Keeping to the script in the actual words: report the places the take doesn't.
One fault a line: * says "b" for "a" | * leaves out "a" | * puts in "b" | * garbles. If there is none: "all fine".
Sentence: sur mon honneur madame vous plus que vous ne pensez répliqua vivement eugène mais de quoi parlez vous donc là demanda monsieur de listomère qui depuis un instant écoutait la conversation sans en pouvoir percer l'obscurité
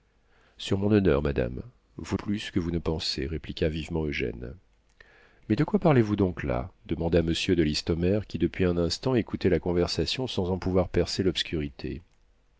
all fine